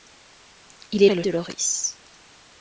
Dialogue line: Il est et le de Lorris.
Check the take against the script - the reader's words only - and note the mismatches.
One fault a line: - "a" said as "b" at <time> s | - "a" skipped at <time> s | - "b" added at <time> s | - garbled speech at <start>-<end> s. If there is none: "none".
none